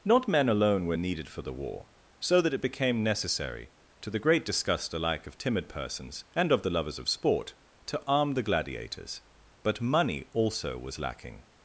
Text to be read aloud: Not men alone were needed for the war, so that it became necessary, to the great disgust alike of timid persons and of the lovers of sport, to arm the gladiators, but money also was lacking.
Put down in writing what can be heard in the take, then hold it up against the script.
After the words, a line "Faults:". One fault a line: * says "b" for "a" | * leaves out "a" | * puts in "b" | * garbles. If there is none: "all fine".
Not men alone were needed for the war, so that it became necessary, to the great disgust alike of timid persons and of the lovers of sport, to arm the gladiators, but money also was lacking.
Faults:
all fine